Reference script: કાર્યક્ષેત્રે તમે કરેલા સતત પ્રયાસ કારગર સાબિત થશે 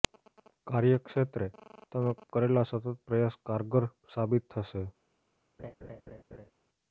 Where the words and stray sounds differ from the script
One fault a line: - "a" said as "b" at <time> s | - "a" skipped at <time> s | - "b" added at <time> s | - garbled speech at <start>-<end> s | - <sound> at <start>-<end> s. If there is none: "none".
- laugh at 5.6-6.5 s